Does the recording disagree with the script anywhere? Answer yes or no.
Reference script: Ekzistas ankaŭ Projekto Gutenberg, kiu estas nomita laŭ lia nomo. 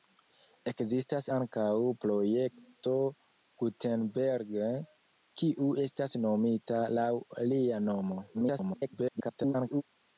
yes